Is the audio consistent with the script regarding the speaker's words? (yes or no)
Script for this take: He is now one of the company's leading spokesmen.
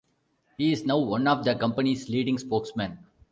yes